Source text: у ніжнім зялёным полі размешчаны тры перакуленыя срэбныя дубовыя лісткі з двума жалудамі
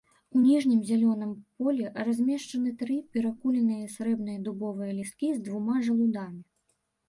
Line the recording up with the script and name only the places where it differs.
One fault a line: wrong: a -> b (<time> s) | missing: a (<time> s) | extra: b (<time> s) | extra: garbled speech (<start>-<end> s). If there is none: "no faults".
no faults